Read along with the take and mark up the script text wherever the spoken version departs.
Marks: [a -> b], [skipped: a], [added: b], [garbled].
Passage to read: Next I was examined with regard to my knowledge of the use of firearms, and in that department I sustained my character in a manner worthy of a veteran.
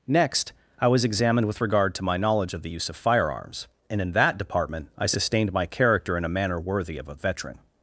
Next I was examined with regard to my knowledge of the use of firearms, and in that department I sustained my character in a manner worthy of a veteran.